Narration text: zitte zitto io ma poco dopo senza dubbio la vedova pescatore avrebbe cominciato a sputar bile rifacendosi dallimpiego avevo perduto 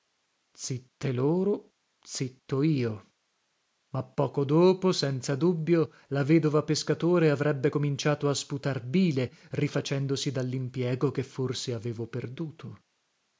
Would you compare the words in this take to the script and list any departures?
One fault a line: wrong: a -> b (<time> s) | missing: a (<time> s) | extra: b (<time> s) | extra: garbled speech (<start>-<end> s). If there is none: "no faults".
extra: loro (1.1 s)
extra: che forse (11.1 s)